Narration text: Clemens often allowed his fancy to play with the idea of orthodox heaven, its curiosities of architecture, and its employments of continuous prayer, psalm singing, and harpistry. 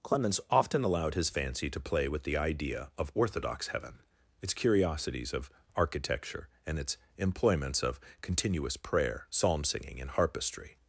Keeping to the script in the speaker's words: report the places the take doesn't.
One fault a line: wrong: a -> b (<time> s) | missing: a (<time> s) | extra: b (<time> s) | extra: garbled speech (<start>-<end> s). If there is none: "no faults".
no faults